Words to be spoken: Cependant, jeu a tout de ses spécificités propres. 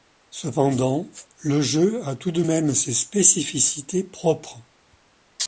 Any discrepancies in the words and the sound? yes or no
yes